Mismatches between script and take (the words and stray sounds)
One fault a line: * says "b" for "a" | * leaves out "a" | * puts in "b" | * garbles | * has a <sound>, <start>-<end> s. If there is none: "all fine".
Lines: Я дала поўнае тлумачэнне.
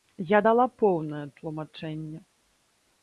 all fine